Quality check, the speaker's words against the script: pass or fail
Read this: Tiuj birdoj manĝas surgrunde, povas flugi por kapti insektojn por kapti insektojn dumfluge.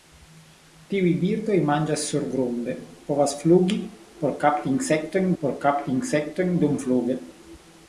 pass